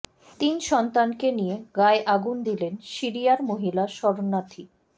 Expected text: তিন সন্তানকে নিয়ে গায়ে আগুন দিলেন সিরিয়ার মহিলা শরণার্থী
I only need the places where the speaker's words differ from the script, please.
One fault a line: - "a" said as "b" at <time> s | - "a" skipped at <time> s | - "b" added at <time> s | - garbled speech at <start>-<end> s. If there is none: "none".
none